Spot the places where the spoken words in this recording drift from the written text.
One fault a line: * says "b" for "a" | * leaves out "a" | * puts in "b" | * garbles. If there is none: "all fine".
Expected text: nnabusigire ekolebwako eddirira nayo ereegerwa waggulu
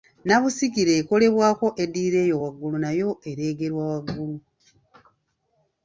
* puts in "eyo waggulu"